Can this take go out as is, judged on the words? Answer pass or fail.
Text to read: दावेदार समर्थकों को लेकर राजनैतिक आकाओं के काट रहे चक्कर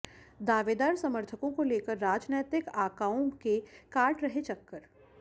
pass